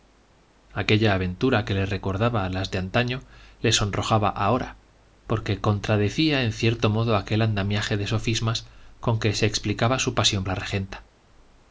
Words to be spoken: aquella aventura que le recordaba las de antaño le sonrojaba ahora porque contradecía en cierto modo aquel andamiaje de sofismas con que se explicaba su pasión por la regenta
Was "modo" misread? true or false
false